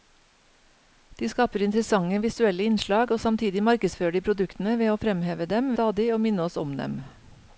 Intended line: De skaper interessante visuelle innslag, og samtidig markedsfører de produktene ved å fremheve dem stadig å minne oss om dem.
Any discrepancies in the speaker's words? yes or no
no